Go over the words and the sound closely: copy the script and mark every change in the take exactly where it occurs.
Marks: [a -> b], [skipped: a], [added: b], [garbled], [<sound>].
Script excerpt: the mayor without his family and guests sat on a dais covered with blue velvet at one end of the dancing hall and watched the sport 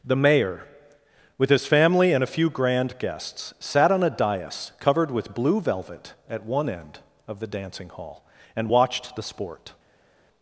the mayor [without -> with] his family and [added: a few grand] guests sat on a dais covered with blue velvet at one end of the dancing hall and watched the sport